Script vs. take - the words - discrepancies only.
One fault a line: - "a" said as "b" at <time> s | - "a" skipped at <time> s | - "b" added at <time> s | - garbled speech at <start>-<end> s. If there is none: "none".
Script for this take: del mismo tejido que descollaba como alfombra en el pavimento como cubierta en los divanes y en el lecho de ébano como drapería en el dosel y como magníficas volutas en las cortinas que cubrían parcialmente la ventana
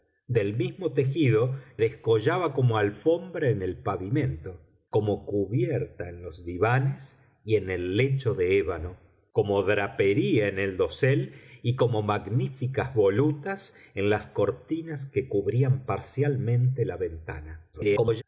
- "que" skipped at 1.6 s
- garbled speech at 17.7-18.2 s